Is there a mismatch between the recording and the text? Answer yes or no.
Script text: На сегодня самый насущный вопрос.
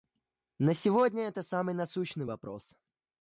yes